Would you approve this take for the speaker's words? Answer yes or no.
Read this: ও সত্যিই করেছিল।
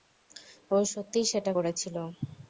no